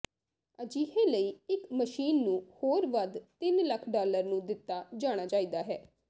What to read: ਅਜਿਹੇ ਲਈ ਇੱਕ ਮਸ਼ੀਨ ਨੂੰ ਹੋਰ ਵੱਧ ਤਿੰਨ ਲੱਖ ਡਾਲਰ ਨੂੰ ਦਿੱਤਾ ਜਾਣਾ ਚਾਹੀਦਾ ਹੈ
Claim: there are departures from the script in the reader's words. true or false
false